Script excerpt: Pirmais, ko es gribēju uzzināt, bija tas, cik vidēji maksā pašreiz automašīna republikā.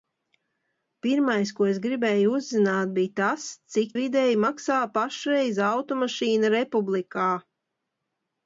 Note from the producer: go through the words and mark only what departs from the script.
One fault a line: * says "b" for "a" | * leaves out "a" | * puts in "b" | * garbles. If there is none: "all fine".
all fine